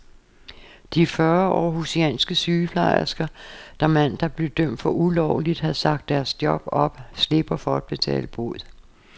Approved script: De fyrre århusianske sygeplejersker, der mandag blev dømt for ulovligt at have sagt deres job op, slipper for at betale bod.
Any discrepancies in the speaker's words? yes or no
no